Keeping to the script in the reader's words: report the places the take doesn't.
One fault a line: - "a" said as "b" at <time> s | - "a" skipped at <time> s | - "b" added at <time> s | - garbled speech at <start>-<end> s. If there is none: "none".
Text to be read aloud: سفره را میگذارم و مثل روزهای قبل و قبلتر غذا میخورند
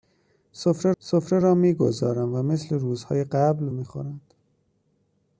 - "سفره" added at 1.0 s
- "و قبلتر غذا" skipped at 3.6 s